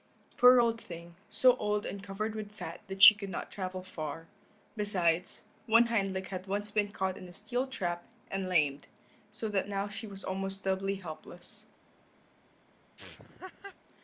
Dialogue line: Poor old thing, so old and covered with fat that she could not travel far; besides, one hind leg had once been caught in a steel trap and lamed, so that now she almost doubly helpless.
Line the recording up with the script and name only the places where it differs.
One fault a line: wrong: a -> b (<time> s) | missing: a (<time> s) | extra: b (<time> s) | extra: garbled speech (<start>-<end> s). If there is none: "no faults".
extra: was (10.1 s)